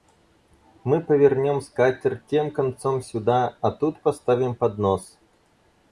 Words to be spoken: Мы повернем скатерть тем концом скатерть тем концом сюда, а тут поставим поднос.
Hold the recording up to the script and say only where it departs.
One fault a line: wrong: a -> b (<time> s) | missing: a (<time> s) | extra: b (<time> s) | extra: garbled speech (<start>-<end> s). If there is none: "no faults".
missing: скатерть тем концом (3.0 s)